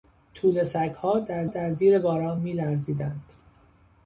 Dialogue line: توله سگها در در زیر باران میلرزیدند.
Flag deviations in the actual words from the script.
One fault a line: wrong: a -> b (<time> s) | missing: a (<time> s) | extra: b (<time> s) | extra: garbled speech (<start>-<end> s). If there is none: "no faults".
no faults